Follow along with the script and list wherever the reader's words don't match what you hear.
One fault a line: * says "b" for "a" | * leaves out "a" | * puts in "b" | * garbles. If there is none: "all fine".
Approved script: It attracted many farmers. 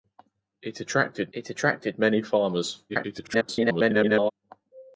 * puts in "it attracted"
* garbles